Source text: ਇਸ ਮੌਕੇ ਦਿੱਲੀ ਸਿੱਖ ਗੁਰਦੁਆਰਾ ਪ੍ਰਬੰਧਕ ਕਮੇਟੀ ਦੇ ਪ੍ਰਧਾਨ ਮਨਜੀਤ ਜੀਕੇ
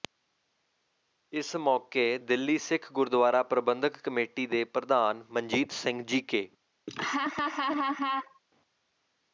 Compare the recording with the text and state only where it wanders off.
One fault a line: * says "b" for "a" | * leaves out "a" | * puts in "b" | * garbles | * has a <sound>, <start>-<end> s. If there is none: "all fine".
* puts in "ਸਿੰਘ"
* has a laugh, 6.9-8.4 s